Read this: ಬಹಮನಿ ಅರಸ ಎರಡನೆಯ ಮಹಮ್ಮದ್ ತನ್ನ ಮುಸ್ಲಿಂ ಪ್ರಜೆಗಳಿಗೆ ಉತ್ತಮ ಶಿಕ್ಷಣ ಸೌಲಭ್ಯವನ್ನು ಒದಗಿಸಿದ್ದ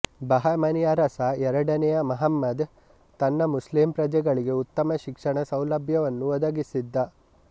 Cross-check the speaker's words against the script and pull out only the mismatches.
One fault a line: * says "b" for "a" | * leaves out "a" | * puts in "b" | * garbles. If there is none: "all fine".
all fine